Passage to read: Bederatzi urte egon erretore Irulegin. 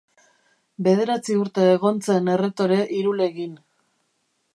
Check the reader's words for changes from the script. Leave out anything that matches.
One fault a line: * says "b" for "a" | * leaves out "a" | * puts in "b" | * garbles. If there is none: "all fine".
* puts in "zen"